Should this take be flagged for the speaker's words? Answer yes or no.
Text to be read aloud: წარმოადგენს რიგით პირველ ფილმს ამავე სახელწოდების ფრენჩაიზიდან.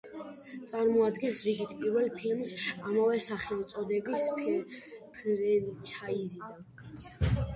no